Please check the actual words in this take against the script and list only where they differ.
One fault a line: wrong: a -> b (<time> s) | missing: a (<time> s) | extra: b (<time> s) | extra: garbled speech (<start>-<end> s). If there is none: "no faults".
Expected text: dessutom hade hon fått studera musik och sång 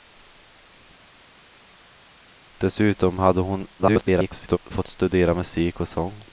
extra: garbled speech (3.8-4.6 s)